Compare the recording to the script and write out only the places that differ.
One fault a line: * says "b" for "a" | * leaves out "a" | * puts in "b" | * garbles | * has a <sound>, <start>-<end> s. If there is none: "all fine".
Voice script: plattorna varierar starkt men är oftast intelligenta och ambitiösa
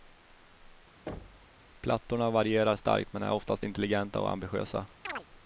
* has a thud, 1.1-1.6 s
* has a chirp, 5.0-5.3 s